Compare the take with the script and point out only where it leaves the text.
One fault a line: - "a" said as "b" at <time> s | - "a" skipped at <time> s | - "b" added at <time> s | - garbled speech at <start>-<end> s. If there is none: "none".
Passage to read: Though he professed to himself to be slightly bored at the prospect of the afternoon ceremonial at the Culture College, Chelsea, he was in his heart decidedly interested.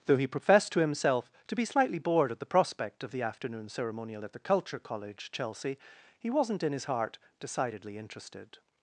- "was" said as "wasn't" at 6.3 s